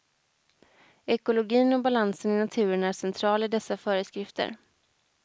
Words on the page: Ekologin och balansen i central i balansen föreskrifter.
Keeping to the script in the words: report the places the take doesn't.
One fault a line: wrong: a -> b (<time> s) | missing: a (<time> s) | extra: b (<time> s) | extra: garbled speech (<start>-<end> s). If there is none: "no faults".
extra: naturen är (2.4 s)
wrong: balansen -> dessa (3.5 s)